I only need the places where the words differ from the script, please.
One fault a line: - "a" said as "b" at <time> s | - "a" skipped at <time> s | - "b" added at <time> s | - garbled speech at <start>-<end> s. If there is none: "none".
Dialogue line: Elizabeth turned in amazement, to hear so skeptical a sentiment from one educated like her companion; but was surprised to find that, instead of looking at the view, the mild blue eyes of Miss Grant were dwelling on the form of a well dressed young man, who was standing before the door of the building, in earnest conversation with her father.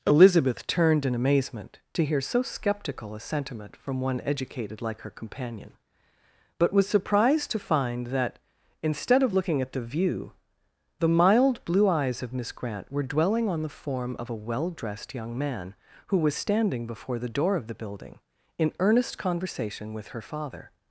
none